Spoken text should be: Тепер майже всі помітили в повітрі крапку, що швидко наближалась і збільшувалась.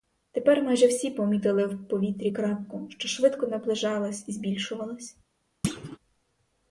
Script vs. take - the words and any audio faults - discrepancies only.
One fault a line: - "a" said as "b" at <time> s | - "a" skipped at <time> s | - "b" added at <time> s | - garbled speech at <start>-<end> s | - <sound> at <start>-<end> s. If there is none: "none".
- thud at 5.6-6.0 s